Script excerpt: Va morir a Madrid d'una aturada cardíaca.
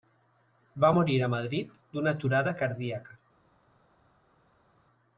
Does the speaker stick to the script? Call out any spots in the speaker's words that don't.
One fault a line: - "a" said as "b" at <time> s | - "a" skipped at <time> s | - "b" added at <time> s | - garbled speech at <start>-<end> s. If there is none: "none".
none